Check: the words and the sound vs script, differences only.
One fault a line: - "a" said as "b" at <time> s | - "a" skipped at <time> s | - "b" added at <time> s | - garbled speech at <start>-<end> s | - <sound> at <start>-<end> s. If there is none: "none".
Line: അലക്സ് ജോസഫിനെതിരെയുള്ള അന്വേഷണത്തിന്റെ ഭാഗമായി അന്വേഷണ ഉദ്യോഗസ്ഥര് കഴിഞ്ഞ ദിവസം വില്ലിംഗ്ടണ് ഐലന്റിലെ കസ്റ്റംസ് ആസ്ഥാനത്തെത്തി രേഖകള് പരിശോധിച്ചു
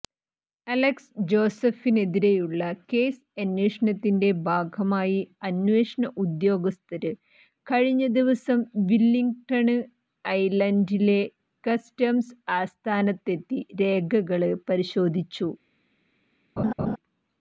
- "കേസ്" added at 2.9 s
- laugh at 16.6-17.0 s